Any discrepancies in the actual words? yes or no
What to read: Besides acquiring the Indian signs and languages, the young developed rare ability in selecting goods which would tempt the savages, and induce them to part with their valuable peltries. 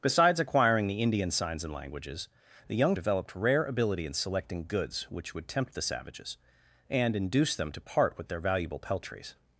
no